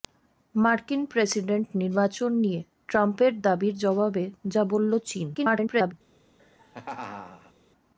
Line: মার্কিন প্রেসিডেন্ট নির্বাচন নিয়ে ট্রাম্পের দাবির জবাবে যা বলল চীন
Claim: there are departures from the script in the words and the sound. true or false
true